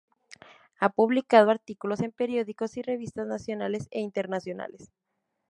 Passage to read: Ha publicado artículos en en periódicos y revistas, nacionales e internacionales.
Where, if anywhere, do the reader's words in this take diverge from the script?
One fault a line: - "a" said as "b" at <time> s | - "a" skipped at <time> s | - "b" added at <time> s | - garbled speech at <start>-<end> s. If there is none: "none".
- "en" skipped at 2.1 s